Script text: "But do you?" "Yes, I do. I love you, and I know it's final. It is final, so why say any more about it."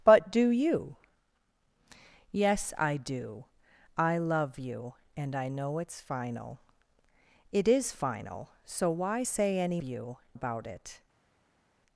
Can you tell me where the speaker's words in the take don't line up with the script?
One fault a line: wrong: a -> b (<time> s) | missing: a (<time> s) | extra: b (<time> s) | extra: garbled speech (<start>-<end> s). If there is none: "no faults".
wrong: more -> you (9.8 s)